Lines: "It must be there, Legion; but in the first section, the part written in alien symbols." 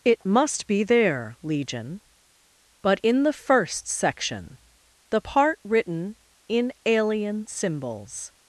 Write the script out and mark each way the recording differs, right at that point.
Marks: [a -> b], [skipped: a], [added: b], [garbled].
"It must be there, Legion; but in the first section, the part written in alien symbols."